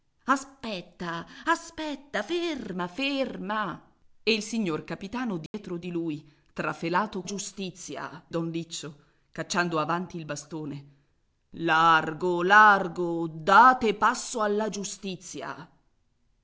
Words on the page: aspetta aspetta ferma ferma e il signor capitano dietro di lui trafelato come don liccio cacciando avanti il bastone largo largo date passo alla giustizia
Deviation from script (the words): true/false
true